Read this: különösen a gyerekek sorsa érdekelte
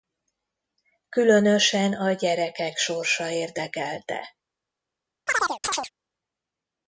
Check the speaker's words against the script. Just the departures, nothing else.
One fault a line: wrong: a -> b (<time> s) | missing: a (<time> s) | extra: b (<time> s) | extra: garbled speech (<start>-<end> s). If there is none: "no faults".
no faults